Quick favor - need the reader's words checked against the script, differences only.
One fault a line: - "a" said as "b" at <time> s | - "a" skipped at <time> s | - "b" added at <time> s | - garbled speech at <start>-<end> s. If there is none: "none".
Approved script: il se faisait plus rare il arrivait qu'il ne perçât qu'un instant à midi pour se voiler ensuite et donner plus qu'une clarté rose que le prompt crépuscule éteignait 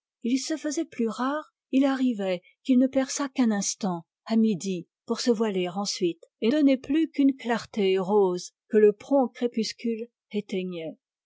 none